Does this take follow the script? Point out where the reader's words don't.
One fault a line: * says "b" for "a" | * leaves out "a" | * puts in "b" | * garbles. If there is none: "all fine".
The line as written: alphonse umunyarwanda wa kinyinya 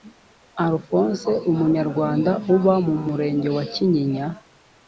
* puts in "uba mu murenge"